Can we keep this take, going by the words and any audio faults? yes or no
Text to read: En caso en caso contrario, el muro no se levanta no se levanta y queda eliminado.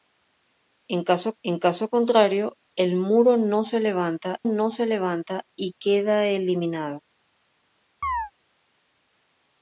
no